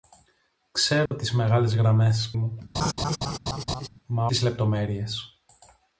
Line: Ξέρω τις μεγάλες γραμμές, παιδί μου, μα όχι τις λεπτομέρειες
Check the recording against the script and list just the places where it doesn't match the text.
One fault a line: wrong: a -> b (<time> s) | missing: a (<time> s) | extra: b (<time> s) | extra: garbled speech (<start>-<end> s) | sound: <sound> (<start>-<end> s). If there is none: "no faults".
sound: dropout (1.1-1.1 s)
missing: παιδί (2.3 s)
sound: laugh (2.7-3.9 s)
missing: όχι (4.3 s)